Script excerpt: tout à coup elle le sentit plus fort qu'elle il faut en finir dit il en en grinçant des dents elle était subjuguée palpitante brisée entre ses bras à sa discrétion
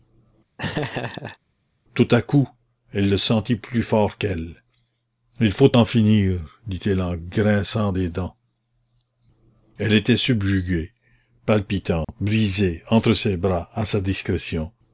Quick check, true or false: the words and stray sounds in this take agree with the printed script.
false